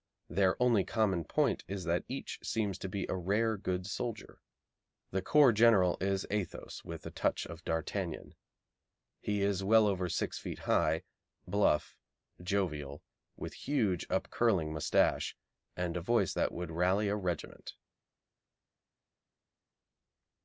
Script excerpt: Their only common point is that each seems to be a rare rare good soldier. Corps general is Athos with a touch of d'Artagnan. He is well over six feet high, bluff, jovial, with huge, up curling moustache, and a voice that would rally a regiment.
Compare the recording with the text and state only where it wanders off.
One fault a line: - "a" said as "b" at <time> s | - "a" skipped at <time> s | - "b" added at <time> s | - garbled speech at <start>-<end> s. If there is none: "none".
- "rare" skipped at 3.5 s
- "The" added at 5.1 s